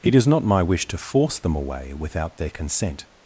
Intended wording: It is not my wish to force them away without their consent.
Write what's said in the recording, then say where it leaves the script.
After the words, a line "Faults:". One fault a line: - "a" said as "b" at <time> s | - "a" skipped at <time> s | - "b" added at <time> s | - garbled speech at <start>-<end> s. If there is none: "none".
It is not my wish to force them away without their consent.
Faults:
none